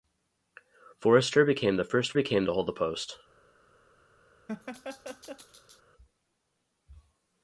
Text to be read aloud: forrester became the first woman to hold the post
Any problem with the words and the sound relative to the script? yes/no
yes